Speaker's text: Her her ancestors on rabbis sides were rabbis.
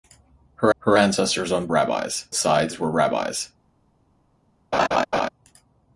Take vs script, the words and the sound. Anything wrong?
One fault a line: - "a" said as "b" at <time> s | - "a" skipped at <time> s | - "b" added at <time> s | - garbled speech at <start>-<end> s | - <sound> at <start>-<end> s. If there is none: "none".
- laugh at 4.7-5.3 s